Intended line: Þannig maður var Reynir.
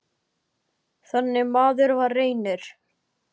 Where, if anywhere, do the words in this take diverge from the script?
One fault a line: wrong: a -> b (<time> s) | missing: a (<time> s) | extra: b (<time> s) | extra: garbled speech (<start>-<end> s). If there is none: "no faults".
no faults